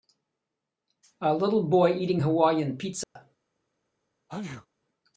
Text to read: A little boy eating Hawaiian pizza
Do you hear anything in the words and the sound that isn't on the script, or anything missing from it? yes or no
yes